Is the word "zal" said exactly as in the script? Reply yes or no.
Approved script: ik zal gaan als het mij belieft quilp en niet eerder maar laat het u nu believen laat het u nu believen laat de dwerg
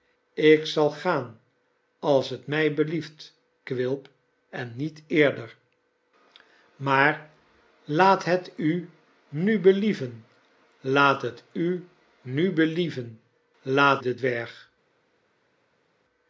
yes